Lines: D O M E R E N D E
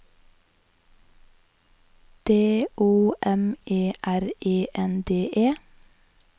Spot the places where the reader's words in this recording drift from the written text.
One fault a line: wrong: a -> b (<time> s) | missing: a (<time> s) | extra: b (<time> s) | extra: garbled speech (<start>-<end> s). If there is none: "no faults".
no faults